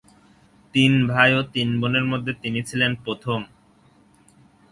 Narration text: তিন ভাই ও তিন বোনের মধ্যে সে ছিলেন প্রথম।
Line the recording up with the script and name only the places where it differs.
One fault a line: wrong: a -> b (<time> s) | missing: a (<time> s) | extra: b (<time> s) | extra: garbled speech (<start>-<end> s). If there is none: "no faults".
wrong: সে -> তিনি (2.4 s)